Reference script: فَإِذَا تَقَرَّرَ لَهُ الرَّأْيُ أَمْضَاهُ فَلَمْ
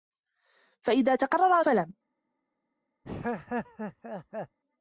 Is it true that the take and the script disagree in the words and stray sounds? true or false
true